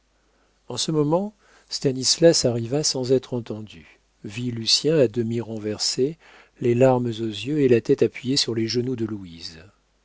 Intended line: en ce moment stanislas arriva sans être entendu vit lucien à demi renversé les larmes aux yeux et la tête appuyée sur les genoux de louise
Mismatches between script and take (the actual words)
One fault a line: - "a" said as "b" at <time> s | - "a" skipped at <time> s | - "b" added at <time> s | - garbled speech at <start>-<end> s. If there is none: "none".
none